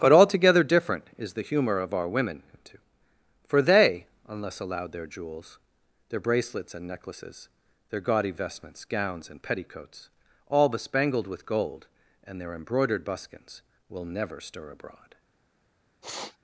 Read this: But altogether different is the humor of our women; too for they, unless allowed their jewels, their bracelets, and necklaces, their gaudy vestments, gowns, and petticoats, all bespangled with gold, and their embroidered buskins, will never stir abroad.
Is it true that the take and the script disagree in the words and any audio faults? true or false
true